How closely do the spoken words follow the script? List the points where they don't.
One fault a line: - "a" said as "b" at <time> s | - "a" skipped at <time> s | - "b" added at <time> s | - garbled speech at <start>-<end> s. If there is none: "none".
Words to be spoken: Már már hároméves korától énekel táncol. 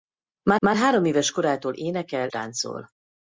none